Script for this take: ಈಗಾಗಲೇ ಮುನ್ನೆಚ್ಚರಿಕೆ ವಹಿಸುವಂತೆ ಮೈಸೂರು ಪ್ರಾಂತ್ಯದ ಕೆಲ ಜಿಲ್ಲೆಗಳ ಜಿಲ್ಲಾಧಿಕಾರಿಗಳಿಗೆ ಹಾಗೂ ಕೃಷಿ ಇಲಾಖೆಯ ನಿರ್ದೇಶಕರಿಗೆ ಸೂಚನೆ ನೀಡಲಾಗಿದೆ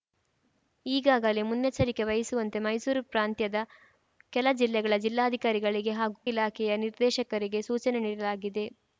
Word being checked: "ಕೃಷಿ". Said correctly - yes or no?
no